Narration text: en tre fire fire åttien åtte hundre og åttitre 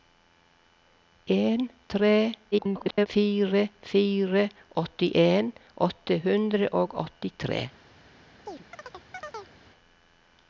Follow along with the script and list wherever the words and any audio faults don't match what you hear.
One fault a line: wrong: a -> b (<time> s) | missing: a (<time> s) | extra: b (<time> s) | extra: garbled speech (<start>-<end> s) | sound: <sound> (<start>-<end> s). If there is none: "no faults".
extra: garbled speech (2.5-3.1 s)
sound: chirp (8.5-9.6 s)